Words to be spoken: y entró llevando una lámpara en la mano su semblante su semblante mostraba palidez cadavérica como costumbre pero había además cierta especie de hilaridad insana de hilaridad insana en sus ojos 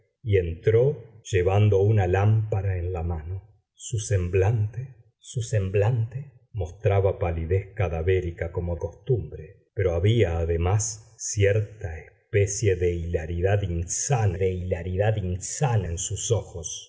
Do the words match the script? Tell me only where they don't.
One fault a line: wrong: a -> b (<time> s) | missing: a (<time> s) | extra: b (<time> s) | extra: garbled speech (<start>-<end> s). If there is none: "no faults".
no faults